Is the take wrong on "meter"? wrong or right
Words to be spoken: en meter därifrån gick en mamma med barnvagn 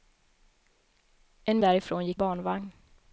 wrong